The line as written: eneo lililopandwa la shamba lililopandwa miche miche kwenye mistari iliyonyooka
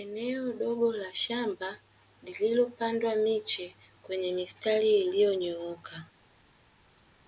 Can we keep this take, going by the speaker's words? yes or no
no